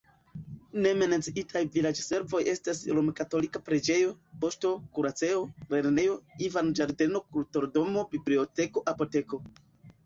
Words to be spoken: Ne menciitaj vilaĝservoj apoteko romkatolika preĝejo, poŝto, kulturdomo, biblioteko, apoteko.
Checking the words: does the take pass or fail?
fail